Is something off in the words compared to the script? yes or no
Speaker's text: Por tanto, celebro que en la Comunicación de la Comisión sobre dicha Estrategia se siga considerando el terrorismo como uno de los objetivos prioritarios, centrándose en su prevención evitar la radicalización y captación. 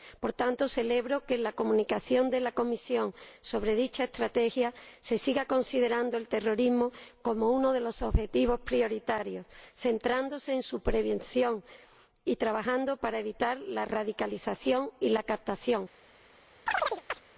yes